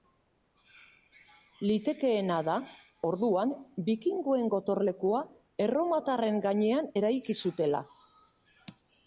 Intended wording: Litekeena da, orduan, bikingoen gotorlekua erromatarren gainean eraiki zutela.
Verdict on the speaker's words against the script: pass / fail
pass